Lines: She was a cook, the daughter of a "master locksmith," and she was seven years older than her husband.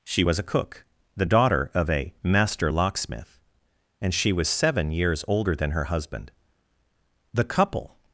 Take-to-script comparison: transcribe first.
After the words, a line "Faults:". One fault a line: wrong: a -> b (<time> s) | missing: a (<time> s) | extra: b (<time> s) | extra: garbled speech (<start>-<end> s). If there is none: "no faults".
She was a cook, the daughter of a "master locksmith," and she was seven years older than her husband. The couple
Faults:
extra: The couple (7.3 s)